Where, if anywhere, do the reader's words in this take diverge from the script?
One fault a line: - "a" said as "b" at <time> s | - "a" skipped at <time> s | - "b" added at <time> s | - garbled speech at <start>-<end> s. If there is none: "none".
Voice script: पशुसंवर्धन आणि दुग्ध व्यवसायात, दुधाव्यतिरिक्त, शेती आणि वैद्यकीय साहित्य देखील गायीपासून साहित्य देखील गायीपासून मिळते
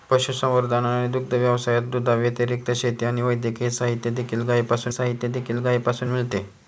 none